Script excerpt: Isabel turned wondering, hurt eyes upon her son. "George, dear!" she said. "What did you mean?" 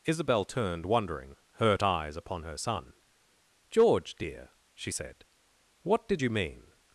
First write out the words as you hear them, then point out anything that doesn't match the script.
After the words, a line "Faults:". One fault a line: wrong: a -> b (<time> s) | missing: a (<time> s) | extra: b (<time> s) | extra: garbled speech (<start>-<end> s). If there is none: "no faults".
Isabel turned wondering, hurt eyes upon her son. "George, dear!" she said. "What did you mean?"
Faults:
no faults